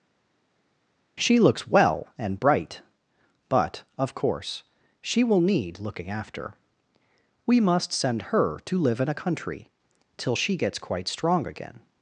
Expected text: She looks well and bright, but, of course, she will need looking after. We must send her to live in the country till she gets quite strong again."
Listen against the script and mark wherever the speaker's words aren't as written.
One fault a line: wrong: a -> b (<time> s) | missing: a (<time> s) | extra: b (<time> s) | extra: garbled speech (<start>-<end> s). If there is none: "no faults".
wrong: the -> a (9.1 s)